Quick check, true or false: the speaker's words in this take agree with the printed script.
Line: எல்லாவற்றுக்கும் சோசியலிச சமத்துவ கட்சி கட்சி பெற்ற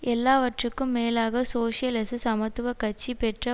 false